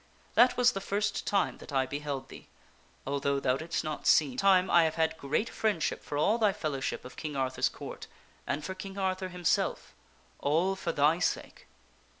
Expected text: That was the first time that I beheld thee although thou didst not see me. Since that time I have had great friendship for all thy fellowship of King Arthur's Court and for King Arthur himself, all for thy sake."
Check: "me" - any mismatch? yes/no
yes